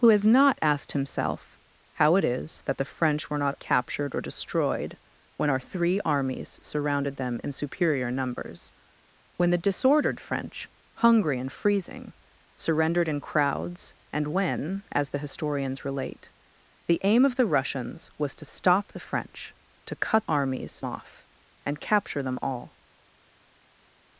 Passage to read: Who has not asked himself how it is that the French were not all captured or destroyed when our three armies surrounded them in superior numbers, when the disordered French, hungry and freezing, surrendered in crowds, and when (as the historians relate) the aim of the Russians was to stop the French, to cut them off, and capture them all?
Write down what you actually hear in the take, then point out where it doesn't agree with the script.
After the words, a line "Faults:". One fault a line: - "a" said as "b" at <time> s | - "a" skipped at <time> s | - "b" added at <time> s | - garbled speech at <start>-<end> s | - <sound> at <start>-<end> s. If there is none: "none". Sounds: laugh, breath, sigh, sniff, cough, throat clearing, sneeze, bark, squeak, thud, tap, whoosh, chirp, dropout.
Who has not asked himself how it is that the French were not captured or destroyed when our three armies surrounded them in superior numbers, when the disordered French, hungry and freezing, surrendered in crowds, and when (as the historians relate) the aim of the Russians was to stop the French, to cut armies off, and capture them all?
Faults:
- "all" skipped at 3.5 s
- "them" said as "armies" at 20.3 s